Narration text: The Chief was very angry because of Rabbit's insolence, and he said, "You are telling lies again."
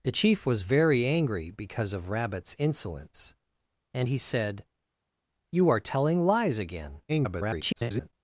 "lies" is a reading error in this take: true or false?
false